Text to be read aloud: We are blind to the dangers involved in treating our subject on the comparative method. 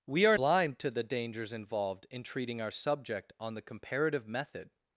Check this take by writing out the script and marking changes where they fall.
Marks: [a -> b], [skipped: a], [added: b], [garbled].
We are blind to the dangers involved in treating our subject on the comparative method.